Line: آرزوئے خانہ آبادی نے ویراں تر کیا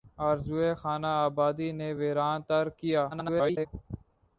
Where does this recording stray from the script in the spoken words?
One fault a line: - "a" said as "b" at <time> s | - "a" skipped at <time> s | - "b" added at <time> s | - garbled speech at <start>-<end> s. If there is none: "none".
- garbled speech at 3.1-3.7 s